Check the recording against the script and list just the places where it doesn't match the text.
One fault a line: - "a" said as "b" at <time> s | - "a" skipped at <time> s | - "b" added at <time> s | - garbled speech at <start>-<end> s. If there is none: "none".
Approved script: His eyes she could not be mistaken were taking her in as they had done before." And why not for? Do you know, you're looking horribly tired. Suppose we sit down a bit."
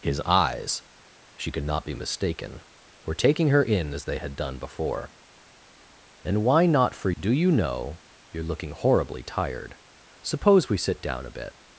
none